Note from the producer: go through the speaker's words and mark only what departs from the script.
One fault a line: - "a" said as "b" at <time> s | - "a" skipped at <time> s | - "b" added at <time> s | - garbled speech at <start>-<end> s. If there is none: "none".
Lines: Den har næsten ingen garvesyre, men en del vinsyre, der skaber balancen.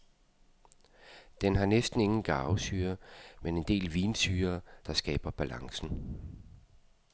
none